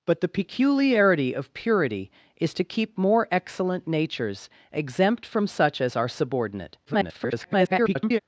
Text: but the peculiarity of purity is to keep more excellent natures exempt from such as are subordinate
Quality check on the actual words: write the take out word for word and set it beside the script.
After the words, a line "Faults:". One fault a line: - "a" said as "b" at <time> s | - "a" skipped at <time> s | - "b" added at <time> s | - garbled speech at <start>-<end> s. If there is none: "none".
but the peculiarity of purity is to keep more excellent natures exempt from such as are subordinate [garbled]
Faults:
- garbled speech at 6.8-8.2 s